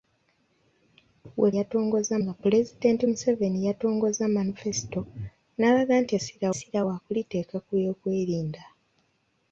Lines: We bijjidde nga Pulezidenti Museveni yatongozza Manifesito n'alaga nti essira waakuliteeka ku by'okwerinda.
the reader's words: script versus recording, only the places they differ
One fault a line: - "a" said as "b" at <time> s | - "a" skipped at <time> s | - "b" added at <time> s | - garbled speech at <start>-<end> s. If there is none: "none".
- "bijjidde" said as "yatongozza" at 1.6 s
- "essira" added at 6.5 s